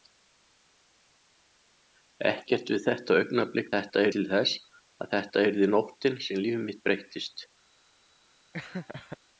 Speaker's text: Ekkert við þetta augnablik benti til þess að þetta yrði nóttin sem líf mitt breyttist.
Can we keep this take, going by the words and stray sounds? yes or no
no